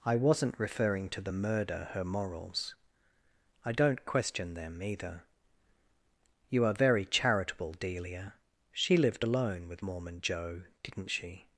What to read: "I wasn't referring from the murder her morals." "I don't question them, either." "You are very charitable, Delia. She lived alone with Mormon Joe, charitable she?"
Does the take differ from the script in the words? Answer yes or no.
yes